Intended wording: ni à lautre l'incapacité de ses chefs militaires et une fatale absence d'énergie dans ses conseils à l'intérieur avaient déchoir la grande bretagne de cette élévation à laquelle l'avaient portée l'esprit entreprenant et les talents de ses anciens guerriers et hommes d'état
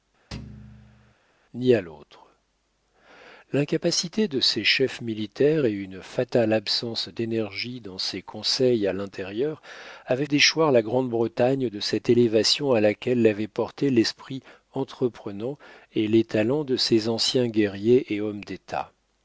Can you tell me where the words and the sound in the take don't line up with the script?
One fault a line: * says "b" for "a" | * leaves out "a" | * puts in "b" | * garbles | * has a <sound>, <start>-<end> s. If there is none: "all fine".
* has a thud, 0.3-1.1 s